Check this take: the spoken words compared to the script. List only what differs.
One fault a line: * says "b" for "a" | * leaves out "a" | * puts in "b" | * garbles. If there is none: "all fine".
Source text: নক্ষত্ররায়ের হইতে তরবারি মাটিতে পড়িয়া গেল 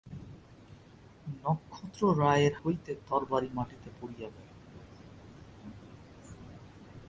all fine